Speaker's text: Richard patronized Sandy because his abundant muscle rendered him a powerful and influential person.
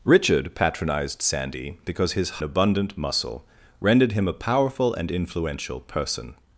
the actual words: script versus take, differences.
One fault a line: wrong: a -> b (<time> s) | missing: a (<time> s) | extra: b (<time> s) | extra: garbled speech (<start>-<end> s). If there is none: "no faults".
no faults